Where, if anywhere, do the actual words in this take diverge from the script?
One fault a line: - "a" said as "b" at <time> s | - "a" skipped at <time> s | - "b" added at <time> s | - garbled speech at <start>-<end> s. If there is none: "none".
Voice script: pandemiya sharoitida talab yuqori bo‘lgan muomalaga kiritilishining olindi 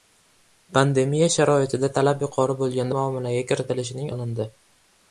none